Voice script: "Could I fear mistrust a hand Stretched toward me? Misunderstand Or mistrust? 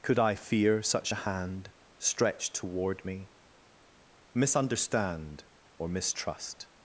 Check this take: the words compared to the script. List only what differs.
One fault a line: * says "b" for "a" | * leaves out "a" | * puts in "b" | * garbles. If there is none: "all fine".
* says "such" for "mistrust"